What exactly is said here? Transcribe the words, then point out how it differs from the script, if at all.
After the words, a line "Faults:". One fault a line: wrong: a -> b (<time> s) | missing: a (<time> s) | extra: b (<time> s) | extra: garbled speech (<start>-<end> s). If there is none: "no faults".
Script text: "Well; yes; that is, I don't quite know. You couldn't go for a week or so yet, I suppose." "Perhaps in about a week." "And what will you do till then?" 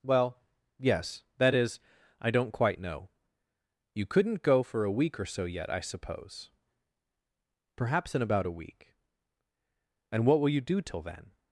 "Well; yes; that is, I don't quite know. You couldn't go for a week or so yet, I suppose." "Perhaps in about a week." "And what will you do till then?"
Faults:
no faults